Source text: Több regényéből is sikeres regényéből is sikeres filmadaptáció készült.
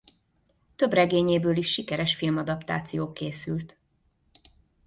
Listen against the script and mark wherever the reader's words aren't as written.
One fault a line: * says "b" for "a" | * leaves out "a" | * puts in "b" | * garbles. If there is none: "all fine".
* leaves out "regényéből is sikeres"